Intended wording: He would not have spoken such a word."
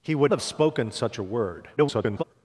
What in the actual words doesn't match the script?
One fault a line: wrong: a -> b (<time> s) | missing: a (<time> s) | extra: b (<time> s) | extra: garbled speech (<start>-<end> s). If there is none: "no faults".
missing: not (0.3 s)
extra: garbled speech (1.8-2.2 s)